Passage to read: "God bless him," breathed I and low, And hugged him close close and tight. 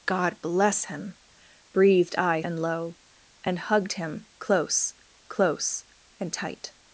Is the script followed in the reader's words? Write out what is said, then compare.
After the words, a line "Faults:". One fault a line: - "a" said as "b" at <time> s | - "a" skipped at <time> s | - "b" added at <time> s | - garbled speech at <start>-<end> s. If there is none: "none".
"God bless him," breathed I and low, And hugged him close close and tight.
Faults:
none